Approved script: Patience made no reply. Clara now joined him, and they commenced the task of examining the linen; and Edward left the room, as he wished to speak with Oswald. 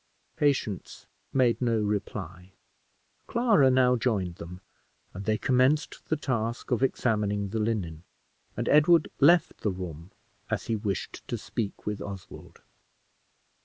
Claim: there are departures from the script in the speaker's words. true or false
true